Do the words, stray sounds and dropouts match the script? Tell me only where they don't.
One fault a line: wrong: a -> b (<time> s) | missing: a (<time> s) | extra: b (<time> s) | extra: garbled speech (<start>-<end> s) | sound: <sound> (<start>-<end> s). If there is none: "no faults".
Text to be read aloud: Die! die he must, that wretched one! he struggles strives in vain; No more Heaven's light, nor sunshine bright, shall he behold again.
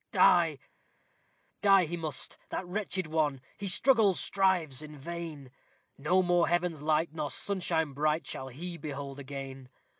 no faults